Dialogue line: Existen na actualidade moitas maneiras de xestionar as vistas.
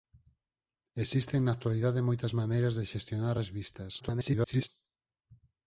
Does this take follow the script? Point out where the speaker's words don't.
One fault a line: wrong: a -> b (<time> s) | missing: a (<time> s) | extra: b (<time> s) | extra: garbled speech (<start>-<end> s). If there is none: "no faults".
extra: garbled speech (4.0-4.7 s)